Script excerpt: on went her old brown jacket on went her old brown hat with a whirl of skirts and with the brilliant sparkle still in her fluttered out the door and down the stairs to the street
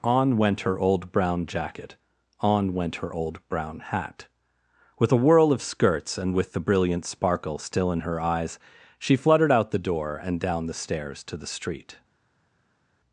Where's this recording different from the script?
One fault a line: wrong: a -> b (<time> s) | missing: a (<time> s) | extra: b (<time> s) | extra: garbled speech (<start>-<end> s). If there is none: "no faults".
extra: eyes she (8.2 s)